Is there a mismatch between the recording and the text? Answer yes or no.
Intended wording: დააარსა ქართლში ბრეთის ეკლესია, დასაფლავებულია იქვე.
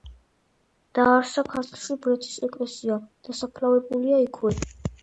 no